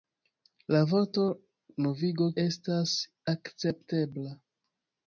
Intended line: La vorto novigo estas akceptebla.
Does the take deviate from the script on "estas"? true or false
false